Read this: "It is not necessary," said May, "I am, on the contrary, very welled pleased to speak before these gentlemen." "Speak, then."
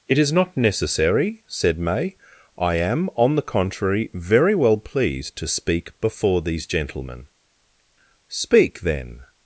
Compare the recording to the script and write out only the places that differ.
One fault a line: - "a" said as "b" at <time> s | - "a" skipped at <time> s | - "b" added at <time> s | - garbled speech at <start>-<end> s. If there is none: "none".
- "welled" said as "well" at 4.5 s